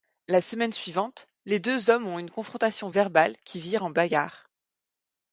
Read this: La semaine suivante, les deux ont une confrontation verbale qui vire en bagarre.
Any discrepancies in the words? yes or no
yes